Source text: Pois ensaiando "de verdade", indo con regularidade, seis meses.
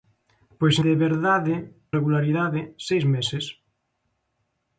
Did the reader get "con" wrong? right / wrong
wrong